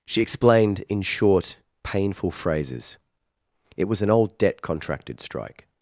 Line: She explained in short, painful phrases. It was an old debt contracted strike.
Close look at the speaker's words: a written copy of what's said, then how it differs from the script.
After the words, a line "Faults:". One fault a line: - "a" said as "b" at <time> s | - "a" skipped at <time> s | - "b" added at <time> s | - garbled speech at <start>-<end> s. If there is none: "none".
She explained in short, painful phrases. It was an old debt contracted strike.
Faults:
none